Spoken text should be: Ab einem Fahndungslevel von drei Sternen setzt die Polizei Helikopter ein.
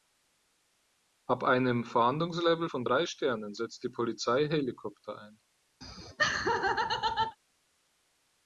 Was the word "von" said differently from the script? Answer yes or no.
no